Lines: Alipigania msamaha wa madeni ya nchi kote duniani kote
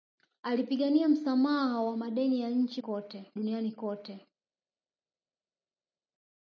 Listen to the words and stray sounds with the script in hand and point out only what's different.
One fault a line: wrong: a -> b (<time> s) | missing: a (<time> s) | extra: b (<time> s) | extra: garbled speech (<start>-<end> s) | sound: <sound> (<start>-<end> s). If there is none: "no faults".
no faults